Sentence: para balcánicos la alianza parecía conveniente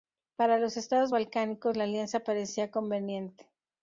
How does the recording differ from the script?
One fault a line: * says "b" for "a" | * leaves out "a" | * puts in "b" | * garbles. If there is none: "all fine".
* puts in "los estados"